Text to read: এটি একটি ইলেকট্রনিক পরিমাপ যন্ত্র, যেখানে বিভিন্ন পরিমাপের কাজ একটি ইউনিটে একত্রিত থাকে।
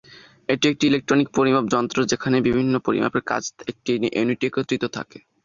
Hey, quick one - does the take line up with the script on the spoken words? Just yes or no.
yes